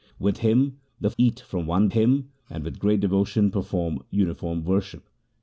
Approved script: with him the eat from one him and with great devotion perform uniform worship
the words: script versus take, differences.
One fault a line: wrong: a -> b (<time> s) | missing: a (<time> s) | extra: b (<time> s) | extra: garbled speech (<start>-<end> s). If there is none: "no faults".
no faults